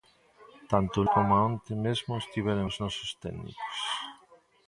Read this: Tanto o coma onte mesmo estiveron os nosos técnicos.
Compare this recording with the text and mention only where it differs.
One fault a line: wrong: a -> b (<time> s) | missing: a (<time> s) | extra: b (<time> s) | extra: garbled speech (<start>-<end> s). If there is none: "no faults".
no faults